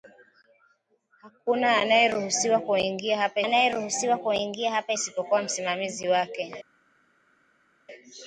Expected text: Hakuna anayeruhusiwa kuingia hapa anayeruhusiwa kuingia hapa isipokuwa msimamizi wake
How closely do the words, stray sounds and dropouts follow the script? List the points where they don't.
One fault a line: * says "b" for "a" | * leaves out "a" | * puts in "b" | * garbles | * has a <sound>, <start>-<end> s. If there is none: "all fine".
all fine